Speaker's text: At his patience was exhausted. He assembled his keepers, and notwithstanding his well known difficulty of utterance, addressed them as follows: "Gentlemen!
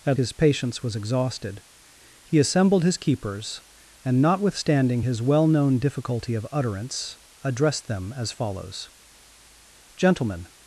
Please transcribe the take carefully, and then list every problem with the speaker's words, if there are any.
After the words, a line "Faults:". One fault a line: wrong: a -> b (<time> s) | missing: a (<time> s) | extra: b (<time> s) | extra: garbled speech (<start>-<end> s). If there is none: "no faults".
At his patience was exhausted. He assembled his keepers, and notwithstanding his well known difficulty of utterance, addressed them as follows: "Gentlemen!
Faults:
no faults